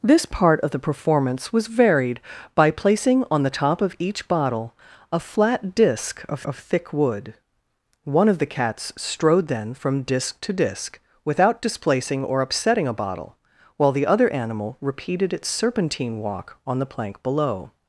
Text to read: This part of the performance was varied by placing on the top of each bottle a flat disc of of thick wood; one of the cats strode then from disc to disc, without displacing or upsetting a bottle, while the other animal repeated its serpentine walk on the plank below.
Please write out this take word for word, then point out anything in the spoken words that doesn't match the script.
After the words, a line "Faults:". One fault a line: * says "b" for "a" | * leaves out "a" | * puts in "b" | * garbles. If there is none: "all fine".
This part of the performance was varied by placing on the top of each bottle a flat disc of of thick wood; one of the cats strode then from disc to disc, without displacing or upsetting a bottle, while the other animal repeated its serpentine walk on the plank below.
Faults:
all fine